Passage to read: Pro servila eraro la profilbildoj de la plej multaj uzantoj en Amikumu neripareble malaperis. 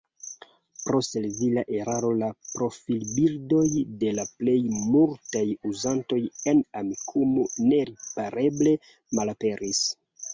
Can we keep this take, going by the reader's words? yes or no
yes